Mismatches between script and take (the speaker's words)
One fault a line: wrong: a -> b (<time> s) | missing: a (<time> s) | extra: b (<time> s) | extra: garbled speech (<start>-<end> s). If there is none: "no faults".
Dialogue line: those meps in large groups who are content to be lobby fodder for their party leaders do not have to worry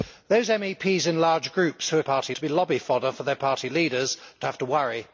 wrong: content -> party (2.0 s)
missing: not (4.5 s)